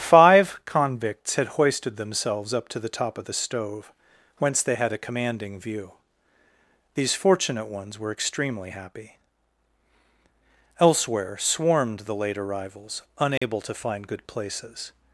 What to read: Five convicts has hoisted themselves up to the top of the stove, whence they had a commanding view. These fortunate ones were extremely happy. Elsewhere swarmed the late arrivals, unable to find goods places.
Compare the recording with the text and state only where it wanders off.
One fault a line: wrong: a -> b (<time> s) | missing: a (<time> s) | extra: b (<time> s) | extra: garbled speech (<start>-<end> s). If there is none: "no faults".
wrong: has -> had (1.4 s)
wrong: goods -> good (14.1 s)